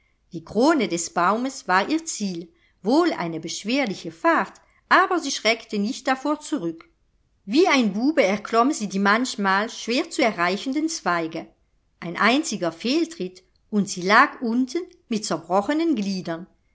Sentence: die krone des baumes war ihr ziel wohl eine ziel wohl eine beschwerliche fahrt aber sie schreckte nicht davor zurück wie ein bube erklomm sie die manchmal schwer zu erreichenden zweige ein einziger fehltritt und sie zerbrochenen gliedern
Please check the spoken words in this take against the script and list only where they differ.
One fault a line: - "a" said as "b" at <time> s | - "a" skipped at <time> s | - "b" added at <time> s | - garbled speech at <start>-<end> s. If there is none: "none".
- "ziel wohl eine" skipped at 3.4 s
- "lag unten mit" added at 14.0 s